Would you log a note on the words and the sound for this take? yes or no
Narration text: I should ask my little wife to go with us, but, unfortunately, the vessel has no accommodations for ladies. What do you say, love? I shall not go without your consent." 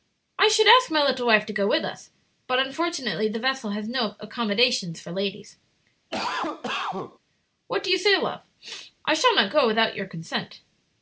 yes